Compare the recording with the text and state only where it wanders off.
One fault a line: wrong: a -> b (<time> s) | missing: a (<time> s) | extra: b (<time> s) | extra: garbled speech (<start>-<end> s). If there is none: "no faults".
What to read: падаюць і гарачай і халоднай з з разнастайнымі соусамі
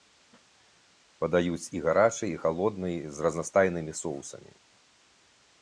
missing: з (3.3 s)